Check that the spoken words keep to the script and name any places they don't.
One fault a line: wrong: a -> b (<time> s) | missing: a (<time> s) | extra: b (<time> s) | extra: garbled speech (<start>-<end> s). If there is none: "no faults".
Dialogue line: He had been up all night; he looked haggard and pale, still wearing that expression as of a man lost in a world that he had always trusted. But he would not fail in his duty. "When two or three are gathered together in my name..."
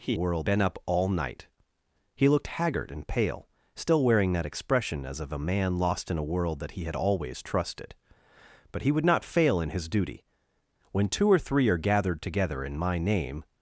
wrong: had -> world (0.2 s)